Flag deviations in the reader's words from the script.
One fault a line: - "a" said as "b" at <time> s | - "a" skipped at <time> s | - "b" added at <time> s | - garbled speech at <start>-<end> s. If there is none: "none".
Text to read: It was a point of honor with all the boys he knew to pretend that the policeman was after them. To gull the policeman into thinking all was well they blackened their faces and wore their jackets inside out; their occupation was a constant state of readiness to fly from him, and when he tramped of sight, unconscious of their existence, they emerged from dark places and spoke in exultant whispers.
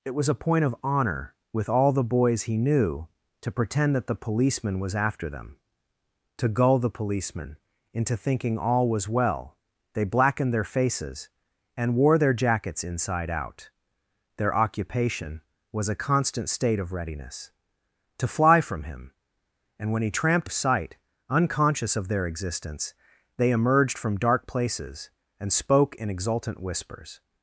none